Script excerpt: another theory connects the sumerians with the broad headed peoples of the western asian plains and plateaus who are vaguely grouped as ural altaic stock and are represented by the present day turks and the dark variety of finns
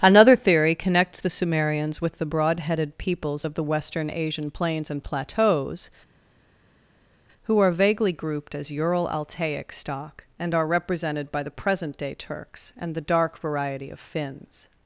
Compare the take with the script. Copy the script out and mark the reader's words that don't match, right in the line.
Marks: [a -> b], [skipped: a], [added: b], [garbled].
another theory connects the sumerians with the broad headed peoples of the western asian plains and plateaus who are vaguely grouped as ural altaic stock and are represented by the present day turks and the dark variety of finns